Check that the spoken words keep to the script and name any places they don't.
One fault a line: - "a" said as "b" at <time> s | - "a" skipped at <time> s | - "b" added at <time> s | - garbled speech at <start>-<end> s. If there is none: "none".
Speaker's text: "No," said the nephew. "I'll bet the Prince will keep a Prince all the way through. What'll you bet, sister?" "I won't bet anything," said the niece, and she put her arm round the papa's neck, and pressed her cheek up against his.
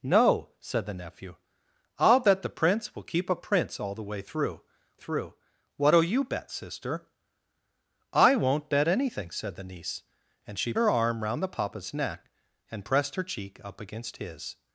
- "through" added at 4.9 s
- "put" skipped at 10.7 s